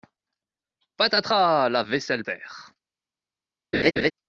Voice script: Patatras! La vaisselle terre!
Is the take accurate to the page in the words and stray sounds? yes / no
no